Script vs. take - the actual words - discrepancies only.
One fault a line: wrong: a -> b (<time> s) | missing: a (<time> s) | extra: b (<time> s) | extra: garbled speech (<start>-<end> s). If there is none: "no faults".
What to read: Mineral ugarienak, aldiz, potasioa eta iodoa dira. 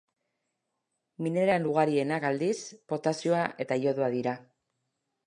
no faults